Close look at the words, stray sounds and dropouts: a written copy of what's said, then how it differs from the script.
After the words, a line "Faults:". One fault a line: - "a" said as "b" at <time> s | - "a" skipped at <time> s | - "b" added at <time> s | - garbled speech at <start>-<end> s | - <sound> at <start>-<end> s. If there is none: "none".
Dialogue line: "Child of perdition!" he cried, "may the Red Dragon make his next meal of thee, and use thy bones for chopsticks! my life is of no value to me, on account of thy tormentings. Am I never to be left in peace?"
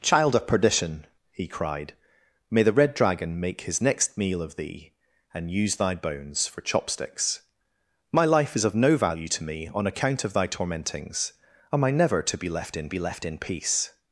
"Child of perdition!" he cried, "may the Red Dragon make his next meal of thee, and use thy bones for chopsticks! my life is of no value to me, on account of thy tormentings. Am I never to be left in be left in peace?"
Faults:
- "be left in" added at 12.9 s